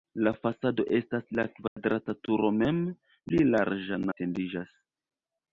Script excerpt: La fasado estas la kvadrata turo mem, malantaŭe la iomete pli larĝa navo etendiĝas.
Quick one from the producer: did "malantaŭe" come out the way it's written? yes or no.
no